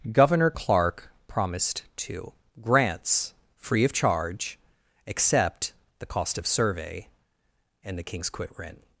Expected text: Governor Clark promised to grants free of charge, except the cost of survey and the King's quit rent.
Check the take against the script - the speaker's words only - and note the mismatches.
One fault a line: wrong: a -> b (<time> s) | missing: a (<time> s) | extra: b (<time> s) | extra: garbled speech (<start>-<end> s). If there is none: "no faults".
no faults